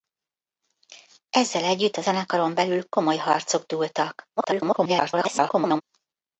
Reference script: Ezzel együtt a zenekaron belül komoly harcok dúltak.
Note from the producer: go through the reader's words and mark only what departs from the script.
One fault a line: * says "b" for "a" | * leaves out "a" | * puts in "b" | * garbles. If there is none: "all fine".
* garbles